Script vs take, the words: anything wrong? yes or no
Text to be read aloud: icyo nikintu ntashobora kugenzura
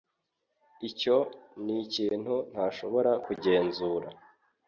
no